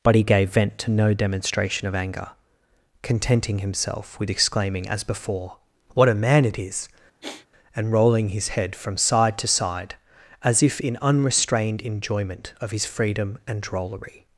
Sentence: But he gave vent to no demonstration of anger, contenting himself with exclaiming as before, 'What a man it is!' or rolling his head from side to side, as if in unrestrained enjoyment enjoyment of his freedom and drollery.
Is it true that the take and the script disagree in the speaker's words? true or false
true